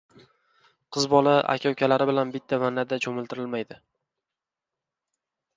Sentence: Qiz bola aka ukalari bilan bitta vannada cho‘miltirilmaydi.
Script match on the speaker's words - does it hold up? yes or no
yes